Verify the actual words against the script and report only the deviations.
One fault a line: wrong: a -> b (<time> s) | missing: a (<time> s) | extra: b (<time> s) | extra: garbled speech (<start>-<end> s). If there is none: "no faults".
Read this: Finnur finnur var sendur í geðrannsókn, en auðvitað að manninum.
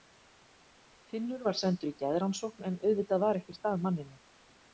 missing: finnur (1.4 s)
extra: var ekkert (3.3 s)